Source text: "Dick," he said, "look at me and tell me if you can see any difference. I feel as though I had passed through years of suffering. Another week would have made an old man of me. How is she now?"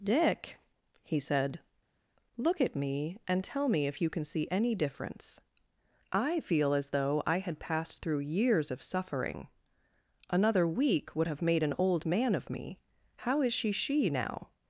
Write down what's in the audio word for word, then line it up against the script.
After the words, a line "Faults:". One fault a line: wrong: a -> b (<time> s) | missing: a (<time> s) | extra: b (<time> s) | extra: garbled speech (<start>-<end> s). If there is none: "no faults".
"Dick," he said, "look at me and tell me if you can see any difference. I feel as though I had passed through years of suffering. Another week would have made an old man of me. How is she she now?"
Faults:
extra: she (13.7 s)